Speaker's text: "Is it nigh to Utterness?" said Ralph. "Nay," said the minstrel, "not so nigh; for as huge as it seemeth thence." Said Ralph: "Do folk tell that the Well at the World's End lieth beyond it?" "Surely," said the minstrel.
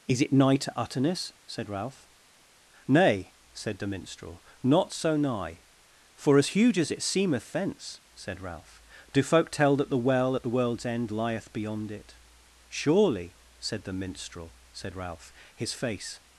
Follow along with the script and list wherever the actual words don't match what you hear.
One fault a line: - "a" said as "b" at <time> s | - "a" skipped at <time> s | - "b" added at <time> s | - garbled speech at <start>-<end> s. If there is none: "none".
- "Said Ralph his face" added at 14.7 s